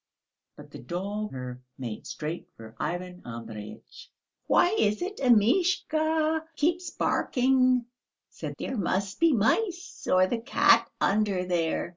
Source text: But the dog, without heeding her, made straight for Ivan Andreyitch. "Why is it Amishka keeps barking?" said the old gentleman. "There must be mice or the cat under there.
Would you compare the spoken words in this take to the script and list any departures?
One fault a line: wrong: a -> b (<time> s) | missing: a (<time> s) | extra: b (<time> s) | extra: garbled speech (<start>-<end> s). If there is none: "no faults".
missing: without heeding (1.3 s)
missing: the old gentleman (8.6 s)